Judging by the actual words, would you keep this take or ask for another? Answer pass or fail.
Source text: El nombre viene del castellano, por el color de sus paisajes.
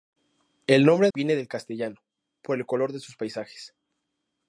pass